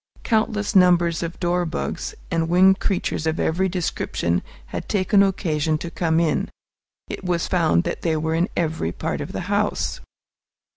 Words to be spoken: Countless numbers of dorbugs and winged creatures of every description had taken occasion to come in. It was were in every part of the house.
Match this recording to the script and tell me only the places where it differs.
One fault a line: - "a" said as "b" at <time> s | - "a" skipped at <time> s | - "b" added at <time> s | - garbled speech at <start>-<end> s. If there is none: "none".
- "found that they" added at 7.5 s